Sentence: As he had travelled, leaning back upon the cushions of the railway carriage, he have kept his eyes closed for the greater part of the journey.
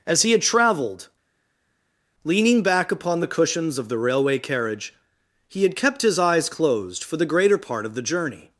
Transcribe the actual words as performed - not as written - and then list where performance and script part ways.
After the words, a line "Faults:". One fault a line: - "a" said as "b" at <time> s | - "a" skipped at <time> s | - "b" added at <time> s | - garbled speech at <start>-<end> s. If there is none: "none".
As he had travelled, leaning back upon the cushions of the railway carriage, he had kept his eyes closed for the greater part of the journey.
Faults:
- "have" said as "had" at 5.6 s